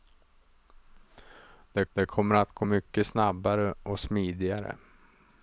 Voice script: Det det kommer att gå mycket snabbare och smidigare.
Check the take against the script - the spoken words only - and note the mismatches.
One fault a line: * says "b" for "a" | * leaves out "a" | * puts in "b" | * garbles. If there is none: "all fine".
all fine